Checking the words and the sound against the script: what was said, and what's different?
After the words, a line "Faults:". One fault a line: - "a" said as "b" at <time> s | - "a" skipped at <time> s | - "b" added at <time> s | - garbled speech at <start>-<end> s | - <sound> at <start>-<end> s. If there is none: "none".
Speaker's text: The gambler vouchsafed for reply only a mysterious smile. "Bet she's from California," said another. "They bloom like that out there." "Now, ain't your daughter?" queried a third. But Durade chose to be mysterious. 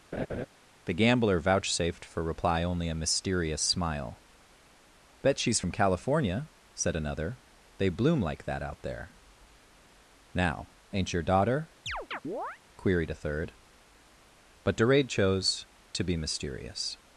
The gambler vouchsafed for reply only a mysterious smile. "Bet she's from California," said another. "They bloom like that out there." "Now, ain't your daughter?" queried a third. But Durade chose to be mysterious.
Faults:
- laugh at 0.1-0.5 s
- chirp at 11.9-12.6 s